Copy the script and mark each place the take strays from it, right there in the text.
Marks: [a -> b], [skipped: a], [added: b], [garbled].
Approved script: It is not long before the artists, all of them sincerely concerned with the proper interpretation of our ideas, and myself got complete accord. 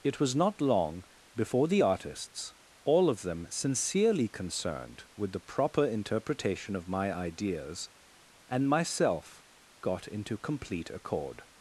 It [is -> was] not long before the artists, all of them sincerely concerned with the proper interpretation of [our -> my] ideas, and myself got [added: into] complete accord.